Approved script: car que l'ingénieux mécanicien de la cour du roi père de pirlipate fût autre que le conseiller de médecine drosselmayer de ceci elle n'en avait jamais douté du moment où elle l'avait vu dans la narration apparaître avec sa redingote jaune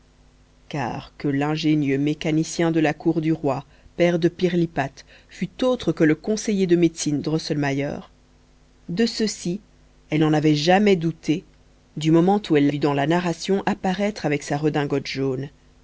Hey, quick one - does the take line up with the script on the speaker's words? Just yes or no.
no